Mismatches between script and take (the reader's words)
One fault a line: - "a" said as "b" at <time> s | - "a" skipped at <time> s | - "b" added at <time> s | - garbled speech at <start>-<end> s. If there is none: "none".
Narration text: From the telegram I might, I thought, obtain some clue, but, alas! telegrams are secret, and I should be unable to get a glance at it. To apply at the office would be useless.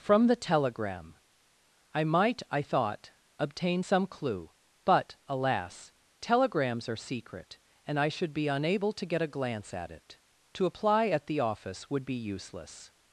none